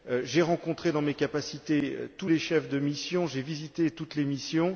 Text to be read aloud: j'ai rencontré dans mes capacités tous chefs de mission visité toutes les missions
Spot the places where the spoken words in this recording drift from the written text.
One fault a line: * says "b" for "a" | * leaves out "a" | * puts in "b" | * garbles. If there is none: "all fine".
* puts in "les"
* puts in "j'ai"